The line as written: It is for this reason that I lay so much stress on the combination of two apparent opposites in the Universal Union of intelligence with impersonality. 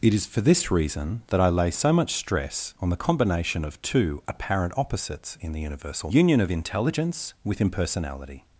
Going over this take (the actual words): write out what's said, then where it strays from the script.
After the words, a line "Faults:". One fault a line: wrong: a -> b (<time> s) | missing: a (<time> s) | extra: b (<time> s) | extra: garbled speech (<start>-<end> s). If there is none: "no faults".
It is for this reason that I lay so much stress on the combination of two apparent opposites in the Universal Union of intelligence with impersonality.
Faults:
no faults